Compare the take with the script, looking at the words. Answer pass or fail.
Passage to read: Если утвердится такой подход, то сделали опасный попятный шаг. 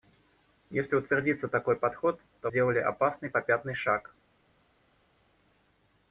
pass